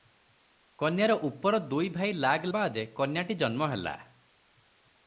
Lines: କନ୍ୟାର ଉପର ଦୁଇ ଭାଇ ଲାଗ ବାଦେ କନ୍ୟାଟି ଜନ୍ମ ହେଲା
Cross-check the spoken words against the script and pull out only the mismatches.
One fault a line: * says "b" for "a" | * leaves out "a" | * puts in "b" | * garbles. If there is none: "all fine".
all fine